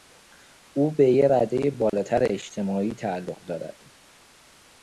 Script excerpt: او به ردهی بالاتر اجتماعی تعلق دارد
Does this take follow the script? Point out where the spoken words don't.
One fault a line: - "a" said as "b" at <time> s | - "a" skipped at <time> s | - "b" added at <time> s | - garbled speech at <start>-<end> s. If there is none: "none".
- "یک" added at 1.1 s